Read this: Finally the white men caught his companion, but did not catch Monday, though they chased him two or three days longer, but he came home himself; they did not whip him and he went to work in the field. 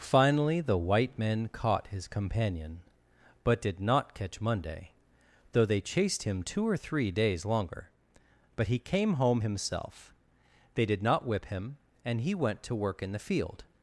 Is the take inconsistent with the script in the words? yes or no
no